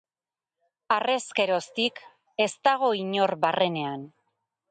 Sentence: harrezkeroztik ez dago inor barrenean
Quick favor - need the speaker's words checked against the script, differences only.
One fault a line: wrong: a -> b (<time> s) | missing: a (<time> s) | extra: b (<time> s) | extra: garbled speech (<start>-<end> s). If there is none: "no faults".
no faults